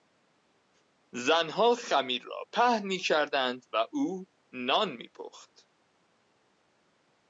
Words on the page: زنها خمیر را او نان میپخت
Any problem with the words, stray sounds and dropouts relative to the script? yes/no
yes